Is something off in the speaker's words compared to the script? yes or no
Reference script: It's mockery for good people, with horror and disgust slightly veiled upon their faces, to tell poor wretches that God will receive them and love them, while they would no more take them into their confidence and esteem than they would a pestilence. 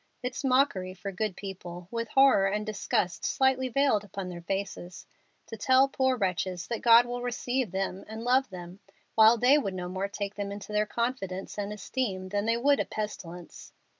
no